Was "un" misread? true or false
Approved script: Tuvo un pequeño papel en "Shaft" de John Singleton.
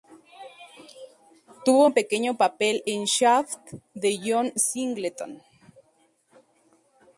false